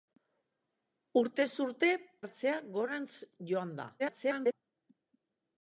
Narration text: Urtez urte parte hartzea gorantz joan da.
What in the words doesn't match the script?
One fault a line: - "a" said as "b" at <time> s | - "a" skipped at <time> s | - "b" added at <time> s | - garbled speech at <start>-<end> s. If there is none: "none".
- "parte" skipped at 1.9 s
- garbled speech at 4.0-4.5 s